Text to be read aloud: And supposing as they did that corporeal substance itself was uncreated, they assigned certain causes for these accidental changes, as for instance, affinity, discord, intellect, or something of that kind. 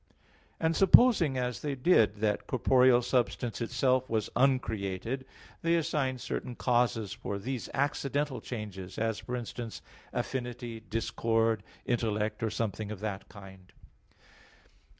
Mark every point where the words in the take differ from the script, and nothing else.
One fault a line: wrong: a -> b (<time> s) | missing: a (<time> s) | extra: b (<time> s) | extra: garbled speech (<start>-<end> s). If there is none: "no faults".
no faults